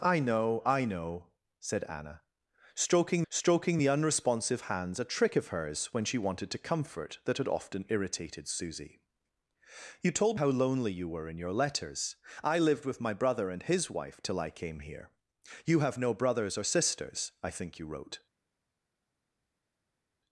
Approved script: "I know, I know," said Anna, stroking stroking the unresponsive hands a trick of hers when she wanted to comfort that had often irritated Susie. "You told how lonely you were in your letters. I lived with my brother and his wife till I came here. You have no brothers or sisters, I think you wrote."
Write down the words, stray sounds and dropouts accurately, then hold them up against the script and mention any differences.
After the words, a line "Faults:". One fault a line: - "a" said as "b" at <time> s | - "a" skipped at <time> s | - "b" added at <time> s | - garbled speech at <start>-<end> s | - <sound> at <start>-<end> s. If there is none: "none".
"I know, I know," said Anna, stroking stroking the unresponsive hands a trick of hers when she wanted to comfort that had often irritated Susie. "You told how lonely you were in your letters. I lived with my brother and his wife till I came here. You have no brothers or sisters, I think you wrote."
Faults:
none